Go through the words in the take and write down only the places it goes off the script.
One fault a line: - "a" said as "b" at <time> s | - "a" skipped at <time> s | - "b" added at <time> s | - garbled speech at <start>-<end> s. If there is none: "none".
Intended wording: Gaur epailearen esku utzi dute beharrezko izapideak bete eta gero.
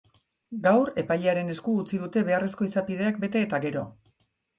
none